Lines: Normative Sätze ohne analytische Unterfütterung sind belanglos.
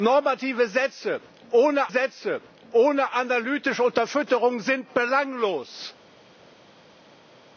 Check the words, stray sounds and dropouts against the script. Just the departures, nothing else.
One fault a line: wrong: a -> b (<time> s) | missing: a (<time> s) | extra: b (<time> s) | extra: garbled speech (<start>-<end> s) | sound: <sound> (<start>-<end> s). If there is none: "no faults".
extra: Sätze ohne (1.9 s)